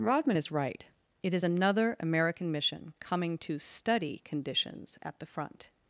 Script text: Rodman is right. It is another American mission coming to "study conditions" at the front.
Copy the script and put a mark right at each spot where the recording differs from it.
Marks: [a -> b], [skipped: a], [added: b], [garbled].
Rodman is right. It is another American mission coming to "study conditions" at the front.